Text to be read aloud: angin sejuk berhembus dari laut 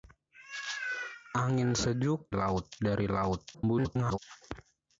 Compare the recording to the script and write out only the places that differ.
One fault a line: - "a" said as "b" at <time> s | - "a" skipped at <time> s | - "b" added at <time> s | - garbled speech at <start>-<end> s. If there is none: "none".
- "berhembus" said as "laut" at 2.3 s
- garbled speech at 3.5-4.2 s